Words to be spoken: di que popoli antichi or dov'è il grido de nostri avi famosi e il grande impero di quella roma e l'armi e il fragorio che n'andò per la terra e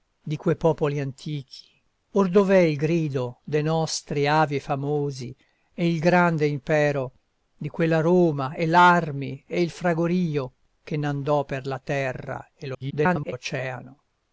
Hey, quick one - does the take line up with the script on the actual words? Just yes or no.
no